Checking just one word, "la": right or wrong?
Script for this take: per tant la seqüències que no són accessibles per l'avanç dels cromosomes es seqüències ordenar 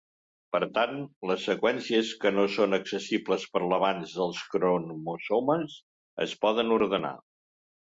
wrong